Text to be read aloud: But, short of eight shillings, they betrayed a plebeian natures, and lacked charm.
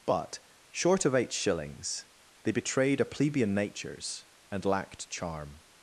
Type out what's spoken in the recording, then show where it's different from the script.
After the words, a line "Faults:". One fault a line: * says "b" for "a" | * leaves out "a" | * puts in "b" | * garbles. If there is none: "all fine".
But, short of eight shillings, they betrayed a plebeian natures, and lacked charm.
Faults:
all fine